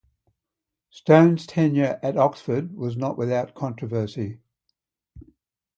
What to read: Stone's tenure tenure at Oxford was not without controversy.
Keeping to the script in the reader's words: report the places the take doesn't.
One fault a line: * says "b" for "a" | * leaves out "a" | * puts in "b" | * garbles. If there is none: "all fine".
* leaves out "tenure"